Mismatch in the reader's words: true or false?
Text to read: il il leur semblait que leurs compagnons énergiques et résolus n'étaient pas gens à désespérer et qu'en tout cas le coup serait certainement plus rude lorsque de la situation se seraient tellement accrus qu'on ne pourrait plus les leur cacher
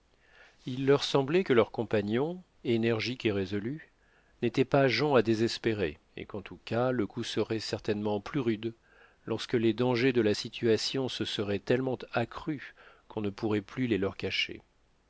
true